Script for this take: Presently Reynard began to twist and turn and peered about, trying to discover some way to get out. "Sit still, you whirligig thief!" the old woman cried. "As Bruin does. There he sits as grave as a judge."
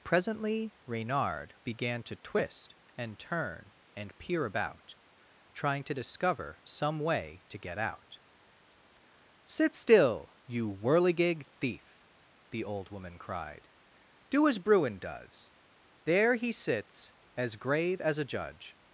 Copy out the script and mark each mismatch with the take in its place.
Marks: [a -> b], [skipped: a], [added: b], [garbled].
Presently Reynard began to twist and turn and [peered -> peer] about, trying to discover some way to get out. "Sit still, you whirligig thief!" the old woman cried. [added: Do] "As Bruin does. There he sits as grave as a judge."